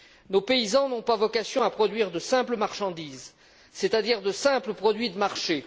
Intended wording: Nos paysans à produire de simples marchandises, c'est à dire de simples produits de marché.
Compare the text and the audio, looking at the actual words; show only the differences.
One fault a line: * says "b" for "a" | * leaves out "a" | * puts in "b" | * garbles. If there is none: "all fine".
* puts in "n'ont pas vocation"